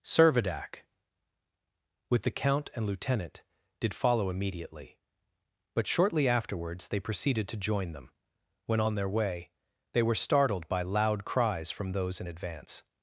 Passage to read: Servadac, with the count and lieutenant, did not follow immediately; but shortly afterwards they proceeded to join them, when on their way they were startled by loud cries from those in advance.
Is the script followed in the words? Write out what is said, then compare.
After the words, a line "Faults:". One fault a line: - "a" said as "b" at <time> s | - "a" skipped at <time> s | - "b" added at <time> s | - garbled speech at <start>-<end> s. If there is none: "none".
Servadac, with the count and lieutenant, did follow immediately; but shortly afterwards they proceeded to join them, when on their way they were startled by loud cries from those in advance.
Faults:
- "not" skipped at 3.9 s